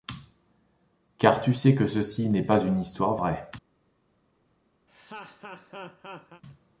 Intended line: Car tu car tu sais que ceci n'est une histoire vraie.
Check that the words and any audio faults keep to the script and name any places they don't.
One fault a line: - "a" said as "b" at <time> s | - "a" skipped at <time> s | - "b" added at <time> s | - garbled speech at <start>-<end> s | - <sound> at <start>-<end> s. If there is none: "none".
- "car tu" skipped at 1.5 s
- "pas" added at 2.4 s
- laugh at 4.9-6.4 s